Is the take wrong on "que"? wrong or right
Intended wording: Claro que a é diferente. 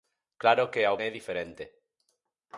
right